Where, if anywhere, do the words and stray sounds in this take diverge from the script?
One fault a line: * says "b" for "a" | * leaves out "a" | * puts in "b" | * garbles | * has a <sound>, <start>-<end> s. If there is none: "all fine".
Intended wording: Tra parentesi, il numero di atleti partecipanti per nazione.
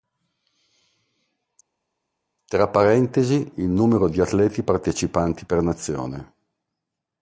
all fine